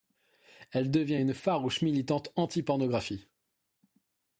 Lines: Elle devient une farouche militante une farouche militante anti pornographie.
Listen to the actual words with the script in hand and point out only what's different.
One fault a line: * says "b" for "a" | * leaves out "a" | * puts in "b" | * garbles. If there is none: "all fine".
* leaves out "une farouche militante"